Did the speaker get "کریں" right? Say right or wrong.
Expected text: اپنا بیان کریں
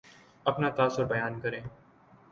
right